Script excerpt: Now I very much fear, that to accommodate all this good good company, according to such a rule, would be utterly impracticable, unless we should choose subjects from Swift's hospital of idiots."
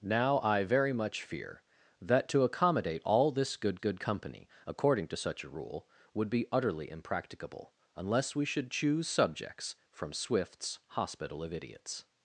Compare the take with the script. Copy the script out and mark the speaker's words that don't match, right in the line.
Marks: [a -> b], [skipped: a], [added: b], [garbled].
Now I very much fear, that to accommodate all this good good company, according to such a rule, would be utterly impracticable, unless we should choose subjects from Swift's hospital of idiots."